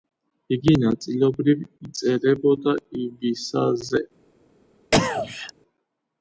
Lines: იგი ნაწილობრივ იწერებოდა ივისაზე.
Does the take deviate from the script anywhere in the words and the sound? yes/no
yes